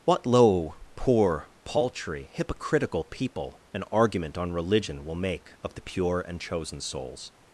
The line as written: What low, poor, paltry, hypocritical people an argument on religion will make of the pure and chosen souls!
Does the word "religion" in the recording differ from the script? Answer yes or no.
no